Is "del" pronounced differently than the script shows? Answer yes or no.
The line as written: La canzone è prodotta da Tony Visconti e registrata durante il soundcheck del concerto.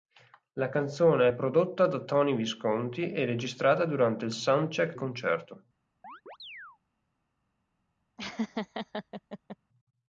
yes